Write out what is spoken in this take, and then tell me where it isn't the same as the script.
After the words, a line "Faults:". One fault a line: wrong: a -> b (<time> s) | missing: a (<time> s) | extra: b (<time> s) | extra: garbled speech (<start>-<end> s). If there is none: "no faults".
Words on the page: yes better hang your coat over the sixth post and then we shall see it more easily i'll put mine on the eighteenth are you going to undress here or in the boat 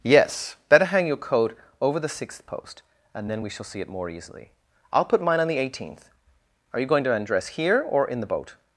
yes better hang your coat over the sixth post and then we shall see it more easily i'll put mine on the eighteenth are you going to undress here or in the boat
Faults:
no faults